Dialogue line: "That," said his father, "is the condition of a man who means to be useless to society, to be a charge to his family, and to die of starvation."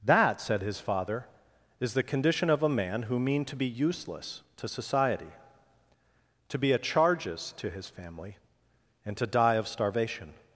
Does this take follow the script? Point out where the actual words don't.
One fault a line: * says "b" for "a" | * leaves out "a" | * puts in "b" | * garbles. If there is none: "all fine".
* says "mean" for "means"
* says "charges" for "charge"